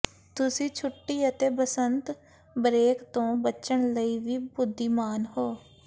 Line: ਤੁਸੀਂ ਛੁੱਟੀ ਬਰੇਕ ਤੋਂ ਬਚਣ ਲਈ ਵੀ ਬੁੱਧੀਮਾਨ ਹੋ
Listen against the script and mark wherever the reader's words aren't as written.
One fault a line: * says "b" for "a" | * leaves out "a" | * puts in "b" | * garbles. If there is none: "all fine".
* puts in "ਅਤੇ ਬਸੰਤ"